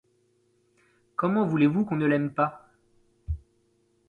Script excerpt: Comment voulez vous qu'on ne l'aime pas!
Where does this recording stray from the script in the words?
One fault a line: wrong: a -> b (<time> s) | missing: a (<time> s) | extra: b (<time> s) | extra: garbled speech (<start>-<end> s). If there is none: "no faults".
no faults